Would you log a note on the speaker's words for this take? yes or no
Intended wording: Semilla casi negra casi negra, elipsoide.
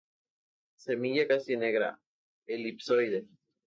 yes